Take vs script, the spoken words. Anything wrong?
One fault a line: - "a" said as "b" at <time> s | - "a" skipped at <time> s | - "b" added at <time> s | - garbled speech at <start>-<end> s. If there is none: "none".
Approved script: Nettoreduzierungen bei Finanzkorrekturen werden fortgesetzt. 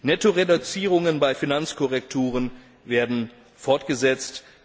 none